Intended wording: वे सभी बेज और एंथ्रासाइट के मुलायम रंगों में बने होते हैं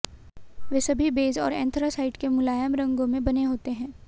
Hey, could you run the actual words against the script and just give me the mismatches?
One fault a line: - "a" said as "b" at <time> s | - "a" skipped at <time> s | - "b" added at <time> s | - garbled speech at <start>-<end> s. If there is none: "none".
none